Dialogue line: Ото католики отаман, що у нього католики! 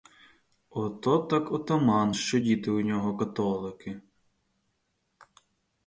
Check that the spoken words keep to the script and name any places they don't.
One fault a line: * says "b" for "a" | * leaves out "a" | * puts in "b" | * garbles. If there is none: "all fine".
* says "так" for "католики"
* puts in "діти"